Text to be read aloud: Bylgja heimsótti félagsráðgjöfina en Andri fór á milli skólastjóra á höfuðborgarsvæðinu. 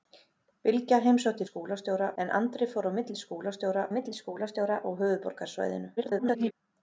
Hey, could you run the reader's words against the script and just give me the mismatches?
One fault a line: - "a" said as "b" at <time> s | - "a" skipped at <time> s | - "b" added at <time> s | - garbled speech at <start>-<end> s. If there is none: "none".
- "félagsráðgjöfina" said as "skólastjóra" at 1.4 s
- "milli skólastjóra" added at 3.9 s
- garbled speech at 6.0-6.5 s